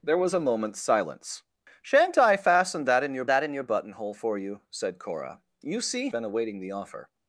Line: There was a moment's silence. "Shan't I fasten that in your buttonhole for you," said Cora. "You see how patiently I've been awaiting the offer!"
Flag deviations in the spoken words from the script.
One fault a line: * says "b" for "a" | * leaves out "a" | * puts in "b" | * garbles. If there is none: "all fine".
* puts in "that in your"
* leaves out "how patiently I've"